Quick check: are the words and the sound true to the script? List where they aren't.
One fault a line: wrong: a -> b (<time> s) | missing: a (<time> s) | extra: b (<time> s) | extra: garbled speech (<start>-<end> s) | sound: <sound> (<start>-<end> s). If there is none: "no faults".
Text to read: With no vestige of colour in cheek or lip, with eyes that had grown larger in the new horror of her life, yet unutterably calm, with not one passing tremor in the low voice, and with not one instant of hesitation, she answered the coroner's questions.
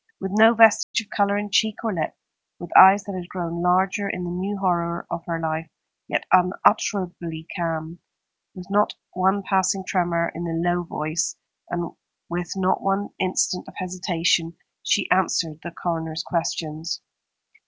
sound: dropout (0.8-0.9 s)